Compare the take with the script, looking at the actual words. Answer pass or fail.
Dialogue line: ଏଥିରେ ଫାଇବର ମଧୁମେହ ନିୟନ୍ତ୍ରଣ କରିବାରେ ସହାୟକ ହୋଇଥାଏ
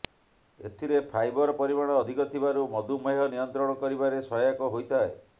fail